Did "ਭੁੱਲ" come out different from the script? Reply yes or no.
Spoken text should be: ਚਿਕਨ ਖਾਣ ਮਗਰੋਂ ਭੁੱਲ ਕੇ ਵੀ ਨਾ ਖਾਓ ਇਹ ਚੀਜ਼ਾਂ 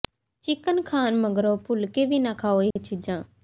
no